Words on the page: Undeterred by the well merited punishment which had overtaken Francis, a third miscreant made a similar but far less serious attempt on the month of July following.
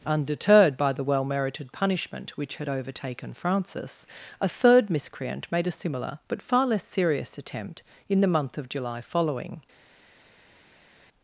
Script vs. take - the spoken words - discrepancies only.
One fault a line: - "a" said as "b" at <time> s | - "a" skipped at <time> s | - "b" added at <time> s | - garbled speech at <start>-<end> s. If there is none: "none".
- "on" said as "in" at 8.1 s